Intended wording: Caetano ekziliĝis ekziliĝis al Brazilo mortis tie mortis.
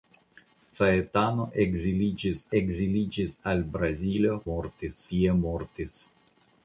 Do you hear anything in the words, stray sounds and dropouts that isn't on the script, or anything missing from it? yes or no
no